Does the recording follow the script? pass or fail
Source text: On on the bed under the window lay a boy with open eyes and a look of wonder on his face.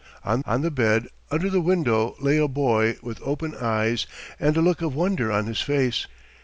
pass